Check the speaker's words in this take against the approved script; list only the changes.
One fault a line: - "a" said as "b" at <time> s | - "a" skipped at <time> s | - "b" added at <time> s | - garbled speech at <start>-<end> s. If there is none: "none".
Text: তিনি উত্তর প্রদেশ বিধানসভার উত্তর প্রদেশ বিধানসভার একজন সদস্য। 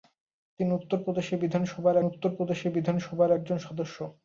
none